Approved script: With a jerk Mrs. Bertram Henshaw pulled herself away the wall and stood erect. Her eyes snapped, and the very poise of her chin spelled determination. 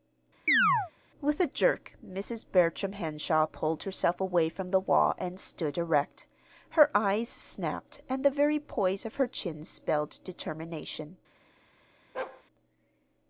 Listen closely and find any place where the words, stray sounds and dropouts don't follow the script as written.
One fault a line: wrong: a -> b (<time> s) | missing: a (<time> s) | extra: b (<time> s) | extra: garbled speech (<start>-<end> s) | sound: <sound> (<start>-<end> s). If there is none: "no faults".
sound: chirp (0.5-0.9 s)
extra: from (4.5 s)
sound: bark (12.1-12.4 s)